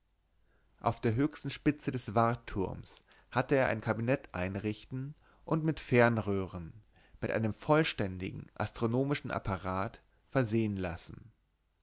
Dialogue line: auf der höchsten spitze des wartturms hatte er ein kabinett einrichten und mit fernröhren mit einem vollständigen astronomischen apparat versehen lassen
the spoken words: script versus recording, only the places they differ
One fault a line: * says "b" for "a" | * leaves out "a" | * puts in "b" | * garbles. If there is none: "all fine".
all fine